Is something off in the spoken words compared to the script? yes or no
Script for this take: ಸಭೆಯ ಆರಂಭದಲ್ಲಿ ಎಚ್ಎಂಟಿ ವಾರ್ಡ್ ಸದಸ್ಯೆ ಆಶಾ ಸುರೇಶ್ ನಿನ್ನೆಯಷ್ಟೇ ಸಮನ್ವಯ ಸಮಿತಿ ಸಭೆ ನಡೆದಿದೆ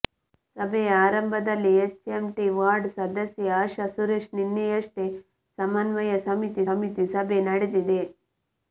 yes